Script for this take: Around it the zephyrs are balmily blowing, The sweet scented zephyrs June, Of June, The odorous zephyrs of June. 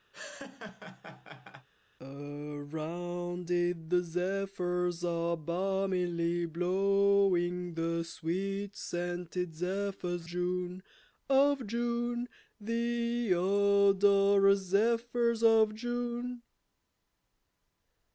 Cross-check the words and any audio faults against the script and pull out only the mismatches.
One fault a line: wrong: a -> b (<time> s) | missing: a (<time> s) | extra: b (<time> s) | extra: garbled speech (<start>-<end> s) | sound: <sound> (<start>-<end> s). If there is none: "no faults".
sound: laugh (0.1-1.7 s)